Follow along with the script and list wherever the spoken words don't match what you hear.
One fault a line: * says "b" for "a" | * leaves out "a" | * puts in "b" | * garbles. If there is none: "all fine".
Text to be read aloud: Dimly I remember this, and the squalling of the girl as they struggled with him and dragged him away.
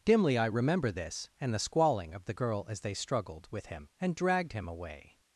all fine